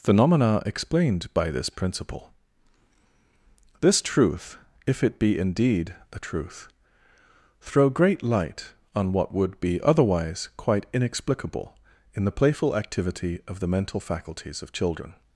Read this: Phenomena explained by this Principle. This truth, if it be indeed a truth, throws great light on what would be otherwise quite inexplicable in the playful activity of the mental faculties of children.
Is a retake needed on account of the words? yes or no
yes